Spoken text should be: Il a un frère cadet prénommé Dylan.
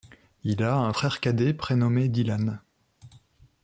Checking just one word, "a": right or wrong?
right